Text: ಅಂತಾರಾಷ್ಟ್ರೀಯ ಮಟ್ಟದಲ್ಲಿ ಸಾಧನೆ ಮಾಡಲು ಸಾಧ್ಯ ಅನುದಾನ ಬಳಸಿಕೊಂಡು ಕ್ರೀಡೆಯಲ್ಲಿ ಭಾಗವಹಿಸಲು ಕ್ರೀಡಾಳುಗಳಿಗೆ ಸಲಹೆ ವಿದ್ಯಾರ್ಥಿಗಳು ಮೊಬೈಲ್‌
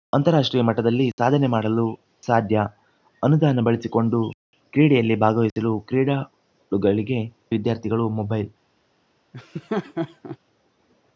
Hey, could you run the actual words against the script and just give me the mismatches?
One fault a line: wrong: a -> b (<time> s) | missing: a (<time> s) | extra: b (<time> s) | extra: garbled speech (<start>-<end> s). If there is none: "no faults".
missing: ಸಲಹೆ (7.2 s)